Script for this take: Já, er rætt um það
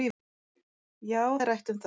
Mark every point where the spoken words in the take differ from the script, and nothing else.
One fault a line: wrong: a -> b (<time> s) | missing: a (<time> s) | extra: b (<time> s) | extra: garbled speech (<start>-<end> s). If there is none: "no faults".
no faults